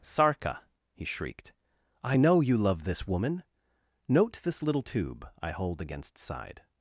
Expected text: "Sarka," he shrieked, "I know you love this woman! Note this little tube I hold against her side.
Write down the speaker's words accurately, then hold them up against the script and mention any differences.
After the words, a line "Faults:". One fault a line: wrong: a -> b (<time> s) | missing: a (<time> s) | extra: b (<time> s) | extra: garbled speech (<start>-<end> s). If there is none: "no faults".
"Sarka," he shrieked, "I know you love this woman! Note this little tube I hold against side.
Faults:
missing: her (6.2 s)